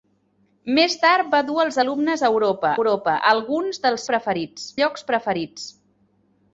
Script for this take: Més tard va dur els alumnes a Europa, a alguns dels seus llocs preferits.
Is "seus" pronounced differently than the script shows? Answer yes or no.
yes